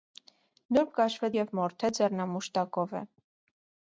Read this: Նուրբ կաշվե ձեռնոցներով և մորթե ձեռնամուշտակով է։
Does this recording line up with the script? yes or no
no